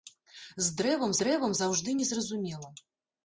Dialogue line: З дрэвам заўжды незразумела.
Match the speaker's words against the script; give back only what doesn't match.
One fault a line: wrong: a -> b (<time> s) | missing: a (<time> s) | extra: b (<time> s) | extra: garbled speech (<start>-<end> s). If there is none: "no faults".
extra: дрэвам (1.2 s)